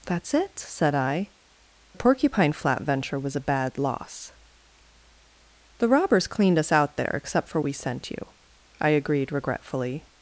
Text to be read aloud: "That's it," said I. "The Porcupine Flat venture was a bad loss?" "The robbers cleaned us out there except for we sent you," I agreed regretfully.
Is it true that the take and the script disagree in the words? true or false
false